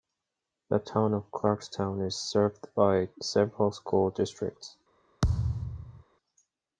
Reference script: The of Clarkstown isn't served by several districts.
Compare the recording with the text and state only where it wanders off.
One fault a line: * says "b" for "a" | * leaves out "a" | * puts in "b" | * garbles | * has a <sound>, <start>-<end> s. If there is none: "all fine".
* puts in "town"
* says "is" for "isn't"
* puts in "school"
* has a thud, 5.2-6.0 s